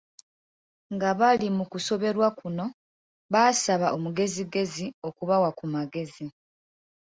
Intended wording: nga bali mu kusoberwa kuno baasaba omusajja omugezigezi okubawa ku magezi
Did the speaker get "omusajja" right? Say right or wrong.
wrong